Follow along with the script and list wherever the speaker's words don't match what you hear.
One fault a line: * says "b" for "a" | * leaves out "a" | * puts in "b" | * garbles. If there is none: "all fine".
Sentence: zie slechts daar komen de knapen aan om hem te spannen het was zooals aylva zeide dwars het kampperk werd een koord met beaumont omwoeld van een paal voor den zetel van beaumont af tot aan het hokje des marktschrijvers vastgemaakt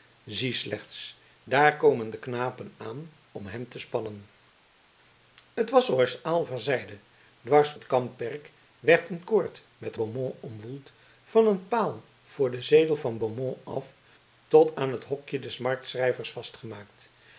all fine